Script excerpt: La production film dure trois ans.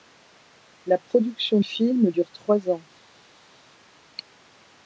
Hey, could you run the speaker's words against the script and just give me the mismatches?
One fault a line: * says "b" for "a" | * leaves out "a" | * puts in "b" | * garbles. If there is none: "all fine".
all fine